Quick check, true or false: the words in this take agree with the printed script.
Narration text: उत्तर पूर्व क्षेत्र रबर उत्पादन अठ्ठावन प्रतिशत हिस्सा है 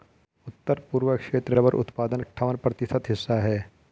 true